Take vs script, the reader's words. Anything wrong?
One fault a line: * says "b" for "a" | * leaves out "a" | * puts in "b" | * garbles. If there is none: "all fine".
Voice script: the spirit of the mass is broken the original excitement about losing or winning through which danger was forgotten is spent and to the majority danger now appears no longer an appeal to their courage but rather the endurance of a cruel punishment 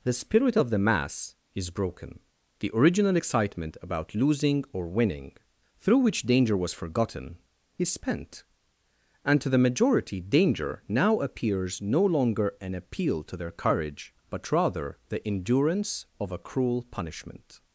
all fine